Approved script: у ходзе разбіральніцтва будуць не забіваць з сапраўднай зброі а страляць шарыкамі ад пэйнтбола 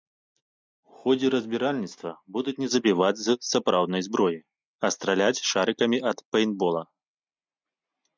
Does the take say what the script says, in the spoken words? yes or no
yes